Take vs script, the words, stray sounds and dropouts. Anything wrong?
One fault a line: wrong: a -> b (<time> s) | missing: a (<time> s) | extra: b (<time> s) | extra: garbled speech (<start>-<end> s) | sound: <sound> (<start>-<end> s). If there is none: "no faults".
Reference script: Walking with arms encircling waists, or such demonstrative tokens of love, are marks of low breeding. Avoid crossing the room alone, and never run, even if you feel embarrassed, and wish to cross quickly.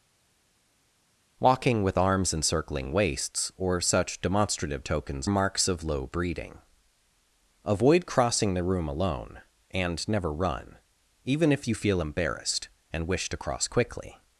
missing: of love are (5.3 s)